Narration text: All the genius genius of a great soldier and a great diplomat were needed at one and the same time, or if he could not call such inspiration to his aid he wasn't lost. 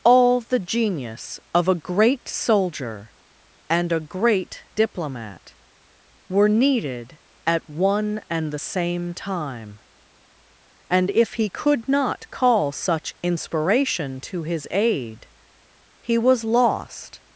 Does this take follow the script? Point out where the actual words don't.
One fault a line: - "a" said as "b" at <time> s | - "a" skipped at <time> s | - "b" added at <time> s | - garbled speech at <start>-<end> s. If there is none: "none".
- "genius" skipped at 1.4 s
- "or" said as "and" at 10.9 s
- "wasn't" said as "was" at 16.2 s